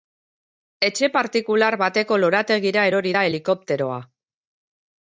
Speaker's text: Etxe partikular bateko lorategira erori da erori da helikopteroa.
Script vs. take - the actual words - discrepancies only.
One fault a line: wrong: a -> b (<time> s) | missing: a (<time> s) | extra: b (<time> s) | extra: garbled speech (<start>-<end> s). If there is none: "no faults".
missing: erori da (3.3 s)